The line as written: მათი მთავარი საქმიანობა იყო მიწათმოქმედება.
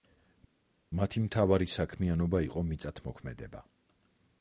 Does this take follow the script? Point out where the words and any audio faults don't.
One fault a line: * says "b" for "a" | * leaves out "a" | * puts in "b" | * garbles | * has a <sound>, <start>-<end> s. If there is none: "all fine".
all fine